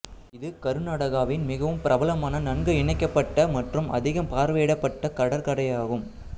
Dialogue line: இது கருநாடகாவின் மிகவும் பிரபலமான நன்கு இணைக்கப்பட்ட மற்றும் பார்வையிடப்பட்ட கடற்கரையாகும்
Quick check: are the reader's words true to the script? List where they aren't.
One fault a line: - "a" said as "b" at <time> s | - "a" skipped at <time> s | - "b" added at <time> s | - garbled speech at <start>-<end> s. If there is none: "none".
- "அதிகம்" added at 4.0 s